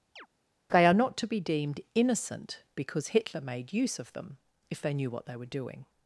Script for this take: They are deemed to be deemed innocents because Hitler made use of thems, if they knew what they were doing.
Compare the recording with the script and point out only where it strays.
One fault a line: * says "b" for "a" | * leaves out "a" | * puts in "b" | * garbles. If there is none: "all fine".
* says "not" for "deemed"
* says "innocent" for "innocents"
* says "them" for "thems"